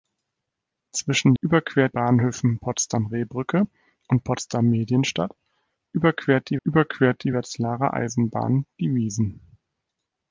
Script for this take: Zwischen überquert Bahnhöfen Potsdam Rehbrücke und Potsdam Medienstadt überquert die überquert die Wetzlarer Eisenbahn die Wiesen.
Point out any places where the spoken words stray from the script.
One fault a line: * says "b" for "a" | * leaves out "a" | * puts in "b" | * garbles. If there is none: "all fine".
all fine